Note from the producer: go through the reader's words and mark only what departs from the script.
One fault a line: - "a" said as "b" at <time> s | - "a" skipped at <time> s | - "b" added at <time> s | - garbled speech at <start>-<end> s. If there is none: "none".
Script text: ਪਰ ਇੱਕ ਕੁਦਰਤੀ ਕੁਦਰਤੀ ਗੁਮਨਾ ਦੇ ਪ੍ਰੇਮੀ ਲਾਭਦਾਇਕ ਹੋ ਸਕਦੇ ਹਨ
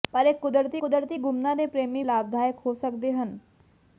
none